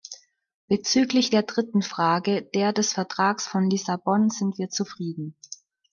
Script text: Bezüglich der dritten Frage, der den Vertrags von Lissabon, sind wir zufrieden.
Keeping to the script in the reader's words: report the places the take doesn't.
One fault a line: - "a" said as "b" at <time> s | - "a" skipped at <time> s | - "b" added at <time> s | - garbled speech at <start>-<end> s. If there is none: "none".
- "den" said as "des" at 2.7 s